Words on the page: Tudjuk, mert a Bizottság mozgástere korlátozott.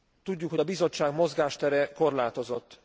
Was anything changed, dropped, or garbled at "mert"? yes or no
yes